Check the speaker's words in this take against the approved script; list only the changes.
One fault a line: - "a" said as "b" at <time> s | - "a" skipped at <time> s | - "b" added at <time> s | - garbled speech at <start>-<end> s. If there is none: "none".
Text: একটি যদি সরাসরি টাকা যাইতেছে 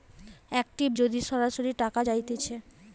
none